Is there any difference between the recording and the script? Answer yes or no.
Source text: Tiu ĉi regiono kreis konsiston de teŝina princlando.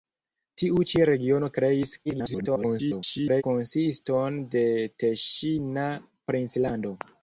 yes